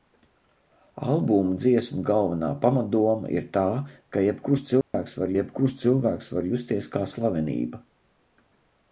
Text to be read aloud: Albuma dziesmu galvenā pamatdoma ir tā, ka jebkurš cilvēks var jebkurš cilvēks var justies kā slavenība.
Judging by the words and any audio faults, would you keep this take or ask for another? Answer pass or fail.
fail